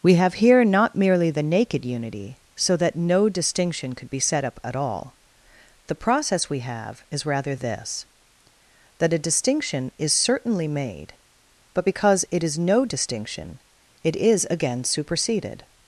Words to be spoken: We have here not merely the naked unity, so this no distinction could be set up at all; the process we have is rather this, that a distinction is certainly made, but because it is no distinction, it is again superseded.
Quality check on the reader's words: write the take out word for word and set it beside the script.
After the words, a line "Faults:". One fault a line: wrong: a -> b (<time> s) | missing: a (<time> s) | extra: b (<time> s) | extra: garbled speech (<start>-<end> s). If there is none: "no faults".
We have here not merely the naked unity, so that no distinction could be set up at all; the process we have is rather this, that a distinction is certainly made, but because it is no distinction, it is again superseded.
Faults:
wrong: this -> that (2.8 s)